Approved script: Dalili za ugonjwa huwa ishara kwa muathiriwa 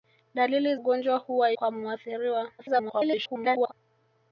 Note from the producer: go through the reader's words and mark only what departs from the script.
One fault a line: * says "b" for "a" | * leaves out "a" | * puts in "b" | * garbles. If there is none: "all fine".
* leaves out "za"
* leaves out "ishara"
* garbles